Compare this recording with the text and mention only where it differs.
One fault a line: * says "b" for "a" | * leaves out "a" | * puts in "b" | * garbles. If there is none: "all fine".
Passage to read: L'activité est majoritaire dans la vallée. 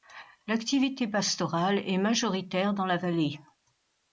* puts in "pastorale"